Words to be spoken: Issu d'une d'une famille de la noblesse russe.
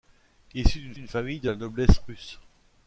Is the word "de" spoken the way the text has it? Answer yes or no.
yes